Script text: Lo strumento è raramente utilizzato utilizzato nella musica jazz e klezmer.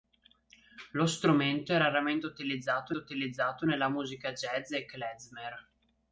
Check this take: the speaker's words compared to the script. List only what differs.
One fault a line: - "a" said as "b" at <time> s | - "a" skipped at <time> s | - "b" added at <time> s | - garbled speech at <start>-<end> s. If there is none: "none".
none